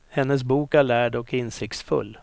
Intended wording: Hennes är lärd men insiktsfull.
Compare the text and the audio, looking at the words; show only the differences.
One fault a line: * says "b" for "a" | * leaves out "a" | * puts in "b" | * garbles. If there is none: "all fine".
* puts in "bok"
* says "och" for "men"